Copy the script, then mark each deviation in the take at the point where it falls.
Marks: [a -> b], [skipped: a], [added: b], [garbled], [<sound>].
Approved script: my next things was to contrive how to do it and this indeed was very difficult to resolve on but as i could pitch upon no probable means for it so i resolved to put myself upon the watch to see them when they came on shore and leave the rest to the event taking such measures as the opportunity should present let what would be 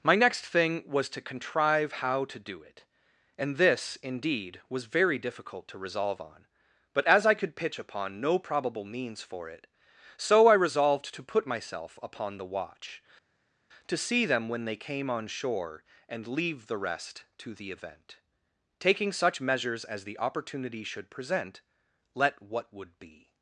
my next [things -> thing] was to contrive how to do it and this indeed was very difficult to resolve on but as i could pitch upon no probable means for it so i resolved to put myself upon the watch to see them when they came on shore and leave the rest to the event taking such measures as the opportunity should present let what would be